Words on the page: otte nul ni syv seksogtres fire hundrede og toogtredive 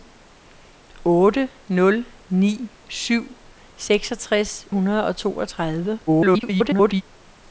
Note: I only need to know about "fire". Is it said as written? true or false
false